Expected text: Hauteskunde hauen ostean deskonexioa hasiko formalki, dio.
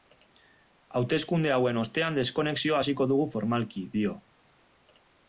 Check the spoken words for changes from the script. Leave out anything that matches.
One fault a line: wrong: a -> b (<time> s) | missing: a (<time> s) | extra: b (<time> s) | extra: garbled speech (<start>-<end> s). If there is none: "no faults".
extra: dugu (3.1 s)